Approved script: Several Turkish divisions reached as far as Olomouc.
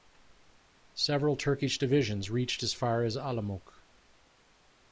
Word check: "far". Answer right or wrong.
right